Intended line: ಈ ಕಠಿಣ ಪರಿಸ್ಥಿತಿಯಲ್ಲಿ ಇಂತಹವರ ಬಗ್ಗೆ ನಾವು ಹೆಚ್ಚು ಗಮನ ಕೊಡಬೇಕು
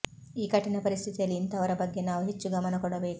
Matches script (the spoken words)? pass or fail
pass